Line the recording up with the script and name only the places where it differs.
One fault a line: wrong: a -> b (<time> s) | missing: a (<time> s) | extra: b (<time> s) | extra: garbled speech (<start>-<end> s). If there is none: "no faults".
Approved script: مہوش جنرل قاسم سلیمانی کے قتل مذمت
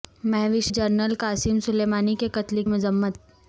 no faults